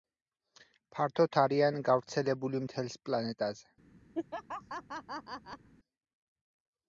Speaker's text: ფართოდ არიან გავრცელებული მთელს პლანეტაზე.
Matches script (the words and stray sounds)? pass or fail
fail